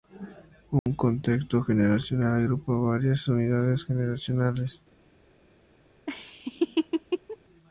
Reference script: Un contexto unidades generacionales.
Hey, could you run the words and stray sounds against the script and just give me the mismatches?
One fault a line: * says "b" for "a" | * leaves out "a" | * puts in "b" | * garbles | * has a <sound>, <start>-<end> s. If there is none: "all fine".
* has a dropout, 0.8-0.9 s
* puts in "generacional agrupa varias"
* has a laugh, 6.1-7.4 s